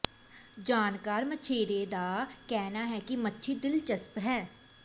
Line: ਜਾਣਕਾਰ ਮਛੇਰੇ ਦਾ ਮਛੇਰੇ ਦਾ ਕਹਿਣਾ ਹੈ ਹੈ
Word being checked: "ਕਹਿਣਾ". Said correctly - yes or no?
no